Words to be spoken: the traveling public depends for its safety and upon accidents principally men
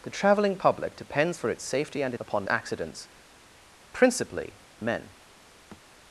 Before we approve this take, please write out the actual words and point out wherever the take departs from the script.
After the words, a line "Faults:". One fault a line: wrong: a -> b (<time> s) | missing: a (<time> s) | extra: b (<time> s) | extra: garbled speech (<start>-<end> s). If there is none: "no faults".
the traveling public depends for its safety and upon accidents principally men
Faults:
no faults